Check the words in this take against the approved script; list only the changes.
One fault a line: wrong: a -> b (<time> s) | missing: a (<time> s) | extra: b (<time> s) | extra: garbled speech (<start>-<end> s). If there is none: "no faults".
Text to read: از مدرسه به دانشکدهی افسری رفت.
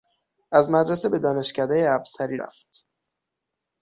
no faults